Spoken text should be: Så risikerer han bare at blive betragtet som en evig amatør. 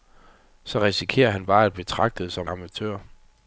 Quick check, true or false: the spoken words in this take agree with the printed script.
false